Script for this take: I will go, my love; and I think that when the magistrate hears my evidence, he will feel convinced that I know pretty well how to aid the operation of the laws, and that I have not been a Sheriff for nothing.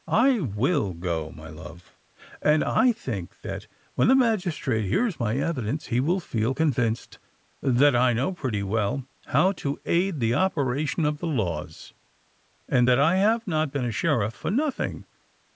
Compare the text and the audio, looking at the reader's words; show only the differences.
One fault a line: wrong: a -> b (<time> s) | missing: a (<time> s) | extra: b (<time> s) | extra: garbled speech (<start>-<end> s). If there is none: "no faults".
no faults